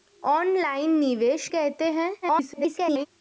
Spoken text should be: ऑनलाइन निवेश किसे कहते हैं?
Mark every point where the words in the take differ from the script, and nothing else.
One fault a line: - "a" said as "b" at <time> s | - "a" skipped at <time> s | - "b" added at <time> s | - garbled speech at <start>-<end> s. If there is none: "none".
- "किसे" skipped at 1.5 s
- garbled speech at 2.2-3.1 s